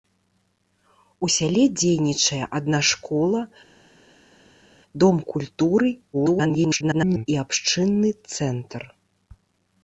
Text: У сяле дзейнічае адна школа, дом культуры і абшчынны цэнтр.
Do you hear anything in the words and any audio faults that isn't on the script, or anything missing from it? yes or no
yes